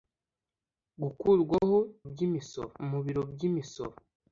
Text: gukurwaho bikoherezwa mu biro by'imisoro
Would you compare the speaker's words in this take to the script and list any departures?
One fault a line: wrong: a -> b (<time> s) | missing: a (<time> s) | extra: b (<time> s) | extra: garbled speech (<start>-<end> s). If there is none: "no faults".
wrong: bikoherezwa -> by'imisoro (2.1 s)